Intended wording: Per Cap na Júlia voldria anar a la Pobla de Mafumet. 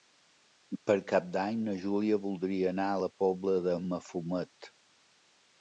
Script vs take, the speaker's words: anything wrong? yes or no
yes